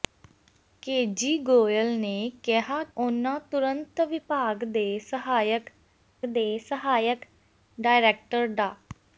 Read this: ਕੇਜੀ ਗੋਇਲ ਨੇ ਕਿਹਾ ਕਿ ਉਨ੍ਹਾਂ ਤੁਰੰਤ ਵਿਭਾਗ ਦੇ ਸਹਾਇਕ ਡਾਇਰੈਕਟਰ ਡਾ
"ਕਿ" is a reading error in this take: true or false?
true